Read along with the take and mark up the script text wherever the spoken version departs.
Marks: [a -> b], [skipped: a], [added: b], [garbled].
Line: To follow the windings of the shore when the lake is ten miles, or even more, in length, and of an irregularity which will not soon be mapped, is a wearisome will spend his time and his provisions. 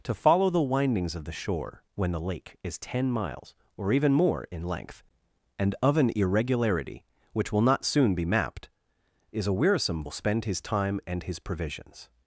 To follow the windings of the shore when the lake is ten miles, or even more, in length, and of an irregularity which will not soon be mapped, is a wearisome will spend his time and his provisions.